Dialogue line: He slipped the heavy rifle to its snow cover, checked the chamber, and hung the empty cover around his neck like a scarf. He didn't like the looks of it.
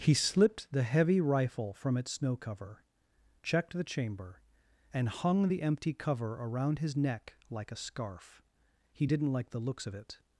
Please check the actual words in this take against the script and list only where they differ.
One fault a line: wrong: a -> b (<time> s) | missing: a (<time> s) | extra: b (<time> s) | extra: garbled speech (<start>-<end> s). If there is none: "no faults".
wrong: to -> from (1.7 s)